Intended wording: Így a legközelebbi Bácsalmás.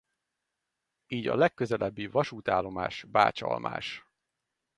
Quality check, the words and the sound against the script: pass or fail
fail